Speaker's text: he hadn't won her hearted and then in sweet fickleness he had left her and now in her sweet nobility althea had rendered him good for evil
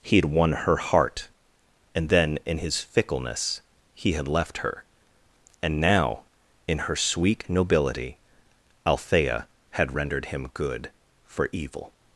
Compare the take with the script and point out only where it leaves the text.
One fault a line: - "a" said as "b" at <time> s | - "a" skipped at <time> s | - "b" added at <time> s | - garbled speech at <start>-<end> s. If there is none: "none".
- "hadn't" said as "had" at 0.1 s
- "hearted" said as "heart" at 0.8 s
- "sweet" said as "his" at 2.6 s